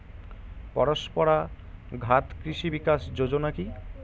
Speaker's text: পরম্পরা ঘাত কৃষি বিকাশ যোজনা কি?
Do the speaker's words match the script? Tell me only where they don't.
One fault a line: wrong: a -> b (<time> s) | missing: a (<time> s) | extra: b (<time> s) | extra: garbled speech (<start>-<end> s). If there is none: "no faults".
no faults